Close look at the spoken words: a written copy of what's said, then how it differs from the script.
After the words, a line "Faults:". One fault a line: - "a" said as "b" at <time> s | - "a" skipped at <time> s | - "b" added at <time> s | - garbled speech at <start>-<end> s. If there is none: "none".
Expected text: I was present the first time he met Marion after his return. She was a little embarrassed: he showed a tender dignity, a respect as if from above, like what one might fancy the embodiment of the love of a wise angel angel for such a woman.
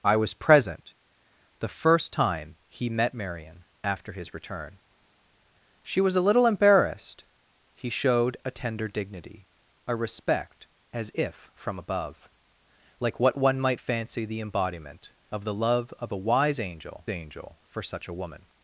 I was present the first time he met Marion after his return. She was a little embarrassed: he showed a tender dignity, a respect as if from above, like what one might fancy the embodiment of the love of a wise angel angel for such a woman.
Faults:
none